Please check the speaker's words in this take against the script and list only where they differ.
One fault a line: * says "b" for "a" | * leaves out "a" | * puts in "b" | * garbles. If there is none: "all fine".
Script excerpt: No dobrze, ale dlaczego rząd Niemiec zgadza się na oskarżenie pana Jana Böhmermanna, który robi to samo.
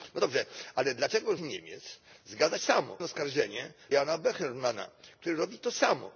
* leaves out "rząd"
* says "samo" for "się"
* leaves out "pana"